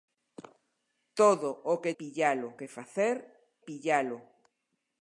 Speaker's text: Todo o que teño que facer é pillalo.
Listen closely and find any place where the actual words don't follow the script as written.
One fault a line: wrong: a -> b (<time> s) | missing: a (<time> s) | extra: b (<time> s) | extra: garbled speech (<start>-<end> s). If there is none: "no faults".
wrong: teño -> pillalo (2.0 s)
missing: é (3.2 s)